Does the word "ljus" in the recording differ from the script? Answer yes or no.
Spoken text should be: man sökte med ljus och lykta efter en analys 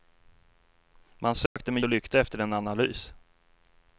yes